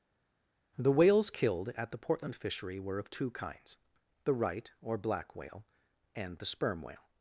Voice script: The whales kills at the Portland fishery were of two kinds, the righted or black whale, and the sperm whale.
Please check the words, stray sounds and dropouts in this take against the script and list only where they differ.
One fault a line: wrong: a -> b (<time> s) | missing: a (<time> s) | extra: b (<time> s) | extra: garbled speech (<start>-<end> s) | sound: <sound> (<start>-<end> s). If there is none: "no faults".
wrong: kills -> killed (1.3 s)
wrong: righted -> right (4.3 s)